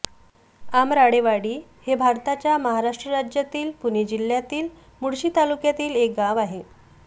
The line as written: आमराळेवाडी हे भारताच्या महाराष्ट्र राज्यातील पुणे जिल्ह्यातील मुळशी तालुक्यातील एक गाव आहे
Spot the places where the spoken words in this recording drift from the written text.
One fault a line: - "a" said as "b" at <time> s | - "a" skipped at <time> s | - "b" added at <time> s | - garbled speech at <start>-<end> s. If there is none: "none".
none